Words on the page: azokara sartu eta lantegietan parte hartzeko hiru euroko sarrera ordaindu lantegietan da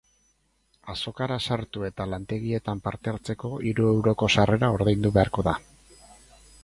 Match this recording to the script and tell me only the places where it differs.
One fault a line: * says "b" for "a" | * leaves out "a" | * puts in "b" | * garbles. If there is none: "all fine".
* says "beharko" for "lantegietan"